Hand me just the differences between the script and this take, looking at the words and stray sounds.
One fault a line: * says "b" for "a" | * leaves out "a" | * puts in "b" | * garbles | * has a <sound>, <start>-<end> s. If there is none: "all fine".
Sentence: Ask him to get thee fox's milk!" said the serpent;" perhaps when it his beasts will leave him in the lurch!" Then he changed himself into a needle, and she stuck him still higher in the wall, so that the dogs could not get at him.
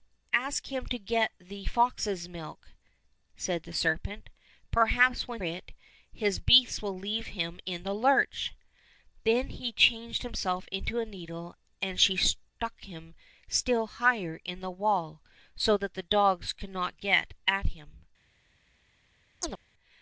* has a chirp, 19.4-19.6 s